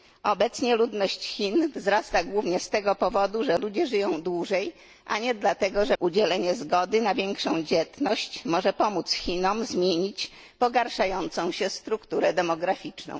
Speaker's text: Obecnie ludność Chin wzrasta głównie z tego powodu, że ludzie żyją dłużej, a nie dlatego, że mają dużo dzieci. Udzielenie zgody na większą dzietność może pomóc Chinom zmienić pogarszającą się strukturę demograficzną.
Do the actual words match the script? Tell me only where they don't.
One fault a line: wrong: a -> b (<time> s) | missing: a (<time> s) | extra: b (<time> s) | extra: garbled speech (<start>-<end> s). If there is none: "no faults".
missing: mają dużo dzieci (6.0 s)